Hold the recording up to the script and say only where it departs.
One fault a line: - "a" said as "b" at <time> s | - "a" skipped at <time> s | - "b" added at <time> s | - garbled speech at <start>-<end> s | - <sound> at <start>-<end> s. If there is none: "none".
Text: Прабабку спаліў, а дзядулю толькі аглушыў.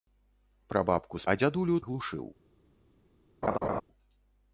- "спаліў" skipped at 1.2 s
- "толькі" skipped at 1.7 s
- laugh at 3.4-3.8 s